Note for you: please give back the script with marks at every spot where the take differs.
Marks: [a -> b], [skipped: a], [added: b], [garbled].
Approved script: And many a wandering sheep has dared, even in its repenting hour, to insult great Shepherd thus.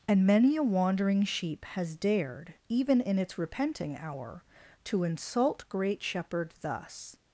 And many a wandering sheep has dared, even in its repenting hour, to insult great Shepherd thus.